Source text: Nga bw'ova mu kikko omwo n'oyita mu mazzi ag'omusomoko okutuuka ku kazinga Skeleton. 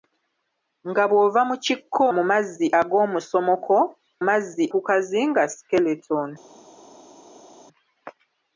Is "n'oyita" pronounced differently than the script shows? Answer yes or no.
yes